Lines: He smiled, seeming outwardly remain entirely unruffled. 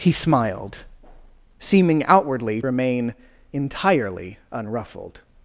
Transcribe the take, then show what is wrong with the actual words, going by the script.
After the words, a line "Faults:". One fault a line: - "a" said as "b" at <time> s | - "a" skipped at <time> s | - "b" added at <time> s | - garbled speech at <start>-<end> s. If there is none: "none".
He smiled, seeming outwardly remain entirely unruffled.
Faults:
none